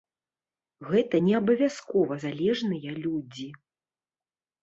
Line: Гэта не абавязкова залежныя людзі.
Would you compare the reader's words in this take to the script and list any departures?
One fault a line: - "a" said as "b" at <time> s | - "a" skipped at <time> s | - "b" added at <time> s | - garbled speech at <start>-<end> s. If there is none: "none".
none